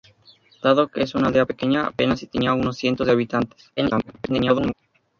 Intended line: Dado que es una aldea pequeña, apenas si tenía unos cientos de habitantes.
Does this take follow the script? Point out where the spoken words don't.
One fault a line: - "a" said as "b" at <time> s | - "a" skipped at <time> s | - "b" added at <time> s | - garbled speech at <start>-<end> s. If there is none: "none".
- garbled speech at 3.8-4.7 s